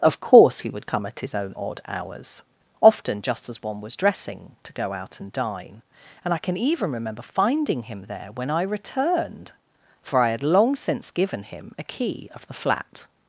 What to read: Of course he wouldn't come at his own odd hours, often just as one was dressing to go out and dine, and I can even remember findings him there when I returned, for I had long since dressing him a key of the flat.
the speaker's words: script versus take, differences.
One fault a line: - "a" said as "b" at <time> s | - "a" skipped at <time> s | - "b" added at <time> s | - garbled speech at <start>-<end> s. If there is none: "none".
- "wouldn't" said as "would" at 0.7 s
- "findings" said as "finding" at 7.2 s
- "dressing" said as "given" at 11.1 s